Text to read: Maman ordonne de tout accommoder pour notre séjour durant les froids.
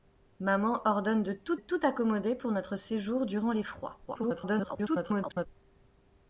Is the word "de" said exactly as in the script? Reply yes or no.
yes